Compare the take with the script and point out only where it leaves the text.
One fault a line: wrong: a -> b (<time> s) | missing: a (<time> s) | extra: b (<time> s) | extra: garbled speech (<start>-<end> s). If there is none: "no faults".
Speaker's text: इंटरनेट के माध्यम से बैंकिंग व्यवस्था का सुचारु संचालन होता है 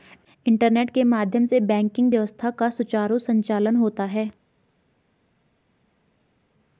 no faults